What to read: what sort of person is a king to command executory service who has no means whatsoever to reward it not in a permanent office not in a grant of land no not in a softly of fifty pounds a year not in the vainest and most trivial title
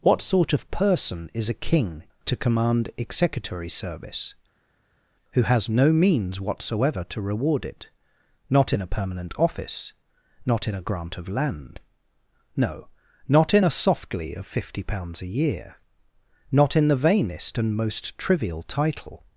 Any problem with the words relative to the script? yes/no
no